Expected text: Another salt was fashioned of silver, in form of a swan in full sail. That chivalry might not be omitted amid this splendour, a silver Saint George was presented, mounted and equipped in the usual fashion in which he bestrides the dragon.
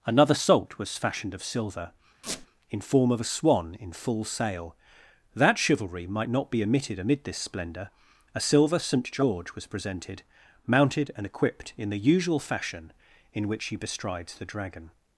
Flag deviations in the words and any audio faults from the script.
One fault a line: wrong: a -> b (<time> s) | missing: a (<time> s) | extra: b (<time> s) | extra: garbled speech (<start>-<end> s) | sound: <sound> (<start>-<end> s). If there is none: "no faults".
sound: squeak (2.2-2.5 s)